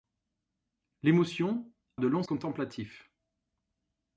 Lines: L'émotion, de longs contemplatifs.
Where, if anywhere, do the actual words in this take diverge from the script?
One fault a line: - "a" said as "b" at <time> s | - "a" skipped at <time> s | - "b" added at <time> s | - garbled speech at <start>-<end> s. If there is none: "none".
none